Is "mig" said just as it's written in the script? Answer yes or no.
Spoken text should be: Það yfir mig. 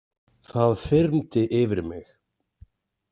yes